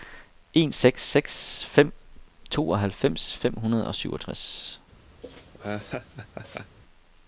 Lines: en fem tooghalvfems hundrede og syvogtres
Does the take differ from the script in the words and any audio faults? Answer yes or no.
yes